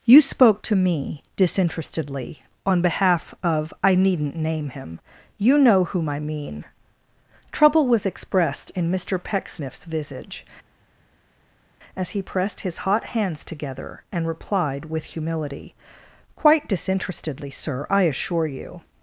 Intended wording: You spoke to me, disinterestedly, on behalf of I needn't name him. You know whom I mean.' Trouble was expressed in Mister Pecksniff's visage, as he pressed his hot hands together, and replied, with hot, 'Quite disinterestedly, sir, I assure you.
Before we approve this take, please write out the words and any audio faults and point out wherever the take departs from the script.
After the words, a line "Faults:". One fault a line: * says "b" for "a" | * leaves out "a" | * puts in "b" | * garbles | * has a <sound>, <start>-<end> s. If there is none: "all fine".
You spoke to me, disinterestedly, on behalf of I needn't name him. You know whom I mean.' Trouble was expressed in Mister Pecksniff's visage, as he pressed his hot hands together, and replied, with humility, 'Quite disinterestedly, sir, I assure you.
Faults:
* says "humility" for "hot"